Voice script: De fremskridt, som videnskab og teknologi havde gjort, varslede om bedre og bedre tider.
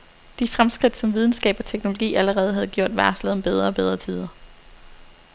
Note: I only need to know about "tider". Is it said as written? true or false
true